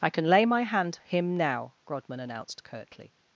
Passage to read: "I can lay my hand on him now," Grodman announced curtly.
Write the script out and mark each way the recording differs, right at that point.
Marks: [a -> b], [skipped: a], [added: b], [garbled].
"I can lay my hand [skipped: on] him now," Grodman announced curtly.